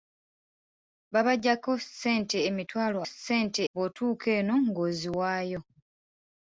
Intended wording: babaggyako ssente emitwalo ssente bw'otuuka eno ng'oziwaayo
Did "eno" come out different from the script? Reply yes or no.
no